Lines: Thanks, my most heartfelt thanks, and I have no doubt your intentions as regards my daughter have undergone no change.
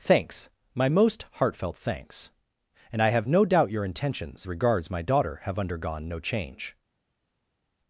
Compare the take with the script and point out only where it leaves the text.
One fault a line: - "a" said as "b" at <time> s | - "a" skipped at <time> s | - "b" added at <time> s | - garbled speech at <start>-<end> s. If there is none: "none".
- "as" skipped at 4.5 s